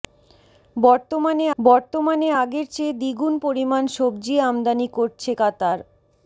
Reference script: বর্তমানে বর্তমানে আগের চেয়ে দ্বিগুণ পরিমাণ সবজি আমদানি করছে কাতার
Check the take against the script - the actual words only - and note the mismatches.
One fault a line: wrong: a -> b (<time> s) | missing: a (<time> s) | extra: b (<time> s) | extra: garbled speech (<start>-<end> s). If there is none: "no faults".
no faults